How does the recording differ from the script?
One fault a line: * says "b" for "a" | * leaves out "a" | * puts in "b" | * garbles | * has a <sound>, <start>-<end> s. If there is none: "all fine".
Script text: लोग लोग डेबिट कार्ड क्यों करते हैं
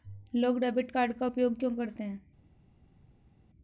* leaves out "लोग"
* puts in "का उपयोग"